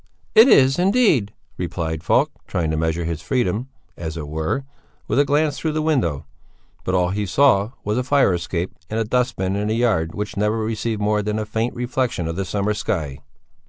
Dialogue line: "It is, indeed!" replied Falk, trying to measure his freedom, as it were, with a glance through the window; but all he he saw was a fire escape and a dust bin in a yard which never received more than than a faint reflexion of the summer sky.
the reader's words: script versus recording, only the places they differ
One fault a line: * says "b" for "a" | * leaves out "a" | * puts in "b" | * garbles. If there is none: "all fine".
* leaves out "he"
* leaves out "than"